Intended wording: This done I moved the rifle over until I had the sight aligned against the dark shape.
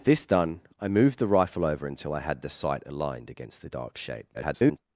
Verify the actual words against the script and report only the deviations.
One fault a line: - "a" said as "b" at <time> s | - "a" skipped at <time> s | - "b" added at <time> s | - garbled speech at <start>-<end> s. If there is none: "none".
- garbled speech at 4.3-4.8 s